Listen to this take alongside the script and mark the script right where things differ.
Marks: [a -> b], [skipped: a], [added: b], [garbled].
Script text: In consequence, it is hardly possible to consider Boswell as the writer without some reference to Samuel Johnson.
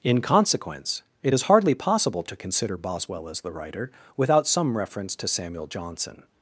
In consequence, it is hardly possible to consider Boswell as the writer without some reference to Samuel Johnson.